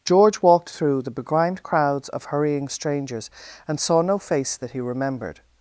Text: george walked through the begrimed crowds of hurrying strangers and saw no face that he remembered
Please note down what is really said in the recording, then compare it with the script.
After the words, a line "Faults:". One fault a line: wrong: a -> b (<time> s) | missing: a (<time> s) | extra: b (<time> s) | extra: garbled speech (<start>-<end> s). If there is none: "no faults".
george walked through the begrimed crowds of hurrying strangers and saw no face that he remembered
Faults:
no faults